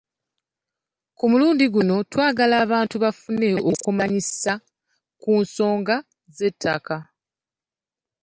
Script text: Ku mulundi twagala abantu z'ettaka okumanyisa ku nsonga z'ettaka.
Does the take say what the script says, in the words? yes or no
no